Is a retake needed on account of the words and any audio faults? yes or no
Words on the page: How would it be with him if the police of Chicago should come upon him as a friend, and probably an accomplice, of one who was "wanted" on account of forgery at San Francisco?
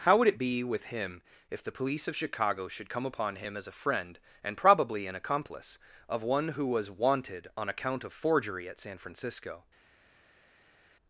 no